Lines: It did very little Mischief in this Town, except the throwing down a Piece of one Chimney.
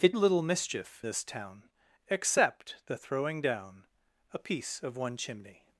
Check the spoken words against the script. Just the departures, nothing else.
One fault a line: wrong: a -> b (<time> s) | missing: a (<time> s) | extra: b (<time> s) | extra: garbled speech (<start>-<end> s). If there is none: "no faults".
missing: did very (0.1 s)
missing: in (1.0 s)